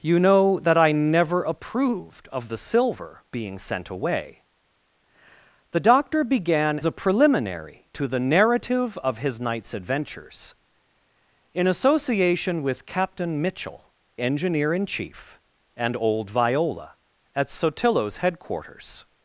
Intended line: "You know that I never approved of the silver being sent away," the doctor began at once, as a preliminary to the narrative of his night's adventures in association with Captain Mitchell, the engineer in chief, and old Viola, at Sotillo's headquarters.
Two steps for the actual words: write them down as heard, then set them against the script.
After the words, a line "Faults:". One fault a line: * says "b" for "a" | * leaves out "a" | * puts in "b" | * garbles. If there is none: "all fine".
"You know that I never approved of the silver being sent away," the doctor began a preliminary to the narrative of his night's adventures in association with Captain Mitchell, engineer in chief, and old Viola, at Sotillo's headquarters.
Faults:
* leaves out "at once as"
* leaves out "the"